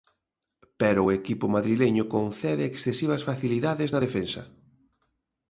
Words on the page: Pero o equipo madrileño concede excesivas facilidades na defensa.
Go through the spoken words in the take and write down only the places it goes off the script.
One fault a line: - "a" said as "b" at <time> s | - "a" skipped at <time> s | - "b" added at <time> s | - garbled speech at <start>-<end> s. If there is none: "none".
none